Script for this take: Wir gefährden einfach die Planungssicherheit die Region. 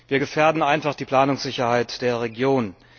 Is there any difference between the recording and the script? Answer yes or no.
yes